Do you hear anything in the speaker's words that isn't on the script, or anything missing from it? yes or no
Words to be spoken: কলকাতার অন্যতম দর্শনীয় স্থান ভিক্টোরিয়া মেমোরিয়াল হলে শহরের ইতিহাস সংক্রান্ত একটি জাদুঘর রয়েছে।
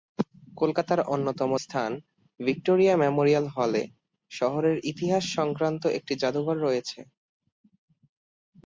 yes